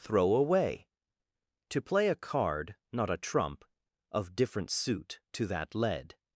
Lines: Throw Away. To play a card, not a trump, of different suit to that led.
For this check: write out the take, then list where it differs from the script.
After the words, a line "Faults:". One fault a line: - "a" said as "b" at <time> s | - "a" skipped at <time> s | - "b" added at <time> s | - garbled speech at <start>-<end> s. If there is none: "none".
Throw Away. To play a card, not a trump, of different suit to that led.
Faults:
none